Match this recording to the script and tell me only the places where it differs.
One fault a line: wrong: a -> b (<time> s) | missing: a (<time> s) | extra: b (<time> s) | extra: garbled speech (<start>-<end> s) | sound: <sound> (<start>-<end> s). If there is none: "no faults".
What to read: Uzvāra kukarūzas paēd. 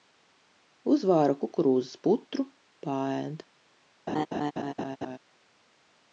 extra: putru (2.1 s)
sound: laugh (4.1-5.2 s)